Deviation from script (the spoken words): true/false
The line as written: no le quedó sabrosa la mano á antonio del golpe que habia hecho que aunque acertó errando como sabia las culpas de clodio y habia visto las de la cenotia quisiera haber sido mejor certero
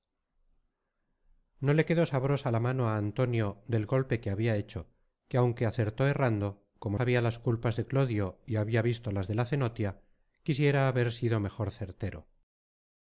false